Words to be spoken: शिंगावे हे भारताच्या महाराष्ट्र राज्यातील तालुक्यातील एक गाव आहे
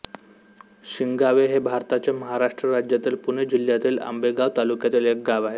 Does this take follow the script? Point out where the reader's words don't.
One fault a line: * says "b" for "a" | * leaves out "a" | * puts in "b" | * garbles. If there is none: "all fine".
* puts in "पुणे जिल्ह्यातील आंबेगाव"